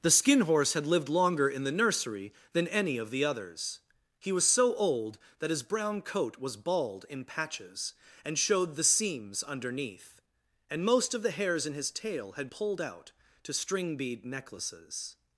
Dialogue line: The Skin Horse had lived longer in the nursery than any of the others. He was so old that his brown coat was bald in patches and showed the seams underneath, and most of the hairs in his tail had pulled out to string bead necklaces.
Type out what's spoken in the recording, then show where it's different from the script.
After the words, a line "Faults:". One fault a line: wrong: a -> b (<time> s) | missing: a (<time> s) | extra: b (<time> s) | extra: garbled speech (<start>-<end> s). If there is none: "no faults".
The Skin Horse had lived longer in the nursery than any of the others. He was so old that his brown coat was bald in patches and showed the seams underneath, and most of the hairs in his tail had pulled out to string bead necklaces.
Faults:
no faults